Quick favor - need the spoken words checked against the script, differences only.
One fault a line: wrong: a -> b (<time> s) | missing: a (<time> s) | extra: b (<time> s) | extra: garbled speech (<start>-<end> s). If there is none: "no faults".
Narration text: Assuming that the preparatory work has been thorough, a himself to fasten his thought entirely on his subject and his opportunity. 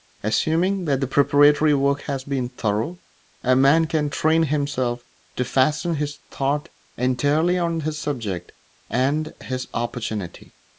extra: man can train (3.5 s)